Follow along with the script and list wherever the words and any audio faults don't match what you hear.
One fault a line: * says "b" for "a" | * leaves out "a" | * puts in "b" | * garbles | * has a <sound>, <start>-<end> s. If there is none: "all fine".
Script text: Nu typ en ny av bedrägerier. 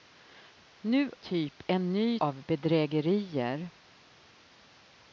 all fine